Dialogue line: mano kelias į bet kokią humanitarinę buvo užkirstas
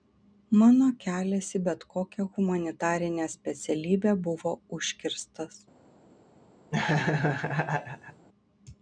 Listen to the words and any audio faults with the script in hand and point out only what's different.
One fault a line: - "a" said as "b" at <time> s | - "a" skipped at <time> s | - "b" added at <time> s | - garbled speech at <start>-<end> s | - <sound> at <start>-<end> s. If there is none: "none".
- "specialybę" added at 3.4 s
- laugh at 6.7-8.3 s